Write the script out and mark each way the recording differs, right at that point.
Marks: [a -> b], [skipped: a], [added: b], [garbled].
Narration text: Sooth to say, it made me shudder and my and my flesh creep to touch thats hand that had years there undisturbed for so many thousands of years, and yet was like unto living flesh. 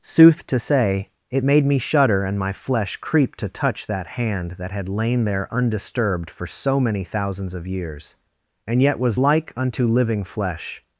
Sooth to say, it made me shudder and my [skipped: and my] flesh creep to touch [thats -> that] hand that had [years -> lain] there undisturbed for so many thousands of years, and yet was like unto living flesh.